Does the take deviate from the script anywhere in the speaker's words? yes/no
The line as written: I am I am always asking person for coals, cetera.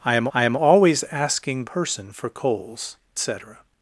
no